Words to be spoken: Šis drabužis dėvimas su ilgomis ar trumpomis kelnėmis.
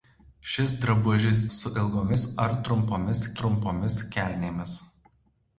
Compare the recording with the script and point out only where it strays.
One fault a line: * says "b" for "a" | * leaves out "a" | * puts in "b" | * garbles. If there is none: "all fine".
* leaves out "dėvimas"
* puts in "trumpomis"